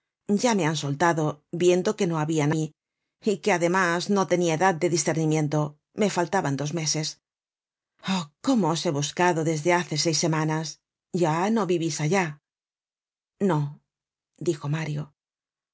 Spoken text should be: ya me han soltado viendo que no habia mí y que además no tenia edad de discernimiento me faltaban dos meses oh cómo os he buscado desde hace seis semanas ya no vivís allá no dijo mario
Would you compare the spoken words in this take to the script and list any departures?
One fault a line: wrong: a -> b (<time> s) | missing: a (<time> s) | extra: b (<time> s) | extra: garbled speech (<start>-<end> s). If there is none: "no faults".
no faults